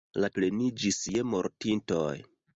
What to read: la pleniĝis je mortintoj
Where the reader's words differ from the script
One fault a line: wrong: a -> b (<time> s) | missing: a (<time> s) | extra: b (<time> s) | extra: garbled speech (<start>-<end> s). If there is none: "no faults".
no faults